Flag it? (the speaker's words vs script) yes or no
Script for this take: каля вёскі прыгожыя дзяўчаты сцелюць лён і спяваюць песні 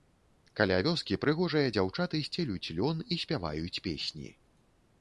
no